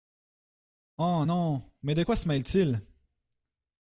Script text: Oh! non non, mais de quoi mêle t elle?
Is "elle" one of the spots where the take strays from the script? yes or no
yes